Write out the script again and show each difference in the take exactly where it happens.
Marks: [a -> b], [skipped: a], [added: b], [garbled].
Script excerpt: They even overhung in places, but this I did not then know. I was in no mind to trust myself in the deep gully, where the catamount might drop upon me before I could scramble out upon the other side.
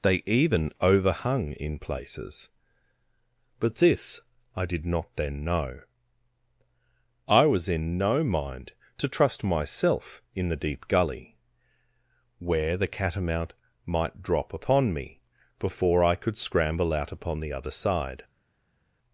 They even overhung in places, but this I did not then know. I was in no mind to trust myself in the deep gully, where the catamount might drop upon me before I could scramble out upon the other side.